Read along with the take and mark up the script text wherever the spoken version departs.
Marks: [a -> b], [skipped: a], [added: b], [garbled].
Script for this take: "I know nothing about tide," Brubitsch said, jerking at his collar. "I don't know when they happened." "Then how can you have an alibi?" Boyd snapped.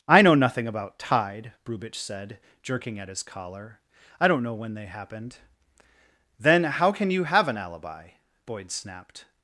"I know nothing about tide," Brubitsch said, jerking at his collar. "I don't know when they happened." "Then how can you have an alibi?" Boyd snapped.